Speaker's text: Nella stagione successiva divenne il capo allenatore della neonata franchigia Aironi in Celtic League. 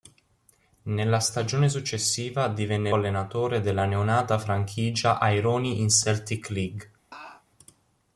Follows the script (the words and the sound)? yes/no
no